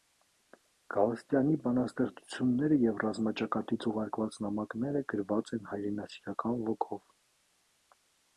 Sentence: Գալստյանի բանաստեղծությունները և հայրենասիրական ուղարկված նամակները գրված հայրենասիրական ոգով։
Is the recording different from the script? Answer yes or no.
yes